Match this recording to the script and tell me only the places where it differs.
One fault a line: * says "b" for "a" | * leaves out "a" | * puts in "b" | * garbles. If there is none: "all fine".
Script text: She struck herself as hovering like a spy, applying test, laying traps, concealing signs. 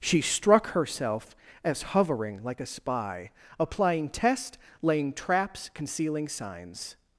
all fine